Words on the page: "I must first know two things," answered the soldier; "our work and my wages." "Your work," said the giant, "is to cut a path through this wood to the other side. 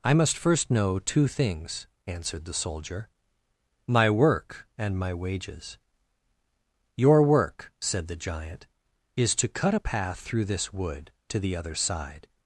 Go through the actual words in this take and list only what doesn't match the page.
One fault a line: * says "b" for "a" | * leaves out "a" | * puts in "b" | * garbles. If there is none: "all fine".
* says "my" for "our"